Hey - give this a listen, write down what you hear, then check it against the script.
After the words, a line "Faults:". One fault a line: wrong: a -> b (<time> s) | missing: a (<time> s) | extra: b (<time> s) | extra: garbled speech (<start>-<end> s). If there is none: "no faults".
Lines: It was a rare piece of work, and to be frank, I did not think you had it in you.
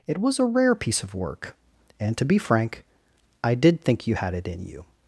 It was a rare piece of work, and to be frank, I did think you had it in you.
Faults:
missing: not (3.8 s)